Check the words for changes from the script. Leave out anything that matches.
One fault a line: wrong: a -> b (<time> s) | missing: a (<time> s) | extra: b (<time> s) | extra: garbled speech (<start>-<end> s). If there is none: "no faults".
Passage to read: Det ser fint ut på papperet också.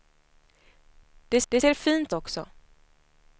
extra: det (1.5 s)
missing: ut på papperet (2.1 s)